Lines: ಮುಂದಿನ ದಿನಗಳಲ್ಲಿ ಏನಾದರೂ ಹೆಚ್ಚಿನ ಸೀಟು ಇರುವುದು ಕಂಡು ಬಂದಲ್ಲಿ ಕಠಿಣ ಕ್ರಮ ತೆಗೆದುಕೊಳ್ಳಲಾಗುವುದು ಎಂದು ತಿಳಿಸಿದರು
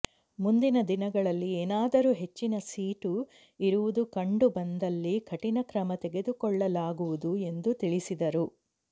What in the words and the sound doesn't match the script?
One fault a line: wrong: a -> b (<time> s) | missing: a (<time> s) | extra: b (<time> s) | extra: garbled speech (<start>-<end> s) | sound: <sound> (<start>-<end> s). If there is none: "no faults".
no faults